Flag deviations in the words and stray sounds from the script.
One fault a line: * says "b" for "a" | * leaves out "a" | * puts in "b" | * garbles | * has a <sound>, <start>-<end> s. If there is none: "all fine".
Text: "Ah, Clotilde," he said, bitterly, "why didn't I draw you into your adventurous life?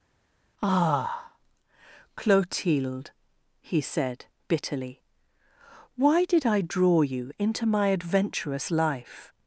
* says "did" for "didn't"
* says "my" for "your"